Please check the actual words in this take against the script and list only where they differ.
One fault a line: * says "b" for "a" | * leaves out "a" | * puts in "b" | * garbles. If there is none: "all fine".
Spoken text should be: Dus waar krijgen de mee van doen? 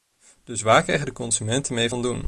* puts in "consumenten"